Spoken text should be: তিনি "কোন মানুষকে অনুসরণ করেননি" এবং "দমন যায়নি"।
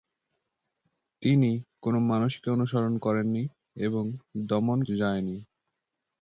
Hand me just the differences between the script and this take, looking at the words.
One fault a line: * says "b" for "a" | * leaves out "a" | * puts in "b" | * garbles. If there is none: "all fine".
all fine